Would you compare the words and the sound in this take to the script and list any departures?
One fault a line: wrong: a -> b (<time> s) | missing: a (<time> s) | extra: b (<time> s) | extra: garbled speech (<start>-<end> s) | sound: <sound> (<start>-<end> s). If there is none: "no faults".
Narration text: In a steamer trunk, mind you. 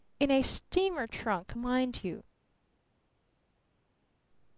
no faults